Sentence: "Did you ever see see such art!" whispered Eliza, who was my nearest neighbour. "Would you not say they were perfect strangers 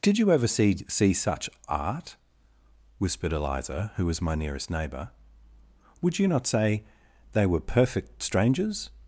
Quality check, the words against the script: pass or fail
pass